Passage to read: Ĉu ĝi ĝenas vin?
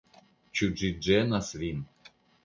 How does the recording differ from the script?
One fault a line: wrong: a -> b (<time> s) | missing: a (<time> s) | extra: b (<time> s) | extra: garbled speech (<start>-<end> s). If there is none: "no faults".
no faults